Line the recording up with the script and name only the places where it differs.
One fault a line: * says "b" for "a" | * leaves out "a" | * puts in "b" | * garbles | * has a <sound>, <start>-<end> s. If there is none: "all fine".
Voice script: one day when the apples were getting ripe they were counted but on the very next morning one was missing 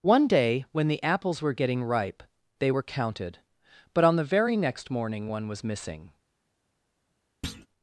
* has a thud, 7.4-7.7 s